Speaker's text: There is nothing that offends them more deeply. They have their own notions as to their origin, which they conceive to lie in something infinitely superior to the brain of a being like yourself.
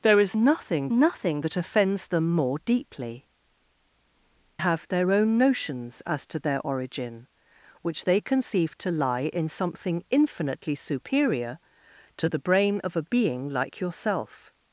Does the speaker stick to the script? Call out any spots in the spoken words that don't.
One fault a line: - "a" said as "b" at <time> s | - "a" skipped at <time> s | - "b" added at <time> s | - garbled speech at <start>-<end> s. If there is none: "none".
- "nothing" added at 0.9 s
- "They" skipped at 3.3 s